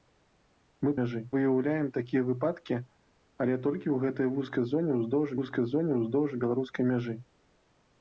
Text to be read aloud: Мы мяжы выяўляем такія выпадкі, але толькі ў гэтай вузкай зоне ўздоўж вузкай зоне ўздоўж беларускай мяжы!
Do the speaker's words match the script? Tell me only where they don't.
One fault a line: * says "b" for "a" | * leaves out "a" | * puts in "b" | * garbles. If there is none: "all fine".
all fine